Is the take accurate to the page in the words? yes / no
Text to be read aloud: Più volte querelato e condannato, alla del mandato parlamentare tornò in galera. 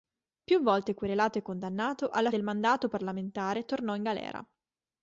yes